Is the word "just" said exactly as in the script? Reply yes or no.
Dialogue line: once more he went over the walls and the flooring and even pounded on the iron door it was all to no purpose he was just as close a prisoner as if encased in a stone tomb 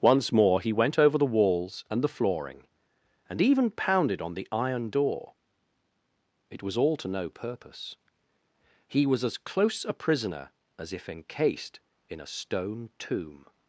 no